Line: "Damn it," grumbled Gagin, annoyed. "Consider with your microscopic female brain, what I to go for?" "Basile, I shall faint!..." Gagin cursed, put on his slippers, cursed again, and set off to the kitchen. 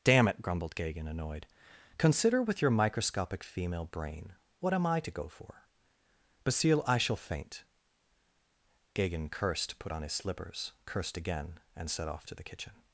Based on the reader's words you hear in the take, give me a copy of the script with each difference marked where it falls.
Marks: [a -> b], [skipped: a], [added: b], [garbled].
"Damn it," grumbled Gagin, annoyed. "Consider with your microscopic female brain, what [added: am] I to go for?" "Basile, I shall faint!..." Gagin cursed, put on his slippers, cursed again, and set off to the kitchen.